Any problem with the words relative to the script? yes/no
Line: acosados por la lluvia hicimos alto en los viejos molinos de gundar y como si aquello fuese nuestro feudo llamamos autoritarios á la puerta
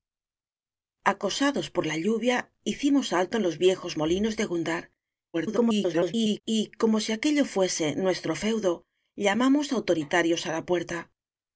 yes